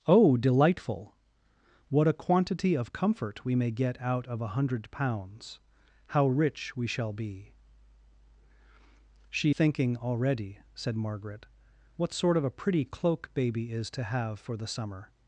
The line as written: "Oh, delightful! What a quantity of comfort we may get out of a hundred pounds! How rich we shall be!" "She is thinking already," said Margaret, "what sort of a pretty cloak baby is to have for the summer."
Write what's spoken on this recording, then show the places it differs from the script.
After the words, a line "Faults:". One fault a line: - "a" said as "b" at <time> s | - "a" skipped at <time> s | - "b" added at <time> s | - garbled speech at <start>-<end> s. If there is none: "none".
"Oh, delightful! What a quantity of comfort we may get out of a hundred pounds! How rich we shall be!" "She thinking already," said Margaret, "what sort of a pretty cloak baby is to have for the summer."
Faults:
- "is" skipped at 9.5 s